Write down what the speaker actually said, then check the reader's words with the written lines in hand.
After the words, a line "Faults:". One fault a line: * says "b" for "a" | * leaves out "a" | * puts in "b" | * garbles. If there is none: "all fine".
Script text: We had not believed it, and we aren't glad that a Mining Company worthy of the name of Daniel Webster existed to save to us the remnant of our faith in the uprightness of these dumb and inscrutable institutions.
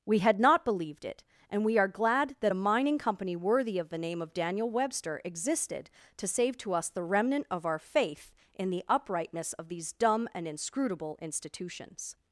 We had not believed it, and we are glad that a Mining Company worthy of the name of Daniel Webster existed to save to us the remnant of our faith in the uprightness of these dumb and inscrutable institutions.
Faults:
* says "are" for "aren't"